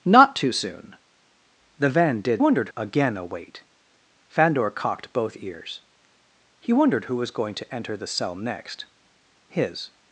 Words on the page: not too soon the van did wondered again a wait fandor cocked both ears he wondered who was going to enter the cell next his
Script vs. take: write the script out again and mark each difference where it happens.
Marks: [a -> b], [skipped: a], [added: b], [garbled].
not too soon the van did wondered again a wait fandor cocked both ears he wondered who was going to enter the cell next his